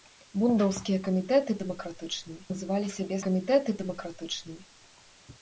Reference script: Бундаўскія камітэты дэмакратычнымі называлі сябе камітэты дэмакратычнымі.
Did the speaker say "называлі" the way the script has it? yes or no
yes